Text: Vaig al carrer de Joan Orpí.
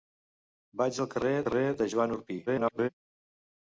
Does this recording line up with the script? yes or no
no